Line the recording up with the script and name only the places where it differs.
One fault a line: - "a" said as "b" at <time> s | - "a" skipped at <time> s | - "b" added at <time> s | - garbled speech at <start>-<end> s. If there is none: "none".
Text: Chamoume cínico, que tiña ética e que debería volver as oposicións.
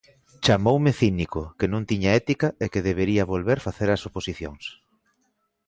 - "non" added at 1.7 s
- "facer" added at 3.7 s